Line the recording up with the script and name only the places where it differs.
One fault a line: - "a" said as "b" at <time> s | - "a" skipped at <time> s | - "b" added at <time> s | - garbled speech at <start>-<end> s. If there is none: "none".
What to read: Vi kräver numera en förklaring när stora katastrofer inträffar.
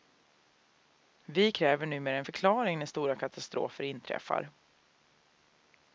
none